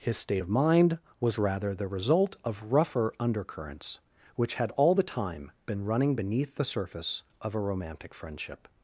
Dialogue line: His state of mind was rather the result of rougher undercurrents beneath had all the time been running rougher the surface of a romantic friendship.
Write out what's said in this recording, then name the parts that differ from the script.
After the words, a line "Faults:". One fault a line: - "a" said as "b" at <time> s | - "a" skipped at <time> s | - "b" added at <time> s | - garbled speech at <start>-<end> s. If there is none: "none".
His state of mind was rather the result of rougher undercurrents which had all the time been running beneath the surface of a romantic friendship.
Faults:
- "beneath" said as "which" at 4.3 s
- "rougher" said as "beneath" at 6.2 s